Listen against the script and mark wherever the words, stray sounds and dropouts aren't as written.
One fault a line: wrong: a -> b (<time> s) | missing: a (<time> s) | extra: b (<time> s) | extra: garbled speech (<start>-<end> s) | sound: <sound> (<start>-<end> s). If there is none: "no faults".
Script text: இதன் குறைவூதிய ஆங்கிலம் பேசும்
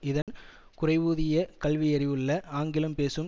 sound: dropout (0.2-0.3 s)
extra: கல்வியறிவுள்ள (1.6 s)